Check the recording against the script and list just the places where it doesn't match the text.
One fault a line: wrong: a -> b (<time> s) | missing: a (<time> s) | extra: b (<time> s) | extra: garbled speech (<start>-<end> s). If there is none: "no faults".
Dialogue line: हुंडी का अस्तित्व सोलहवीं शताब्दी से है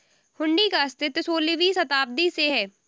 no faults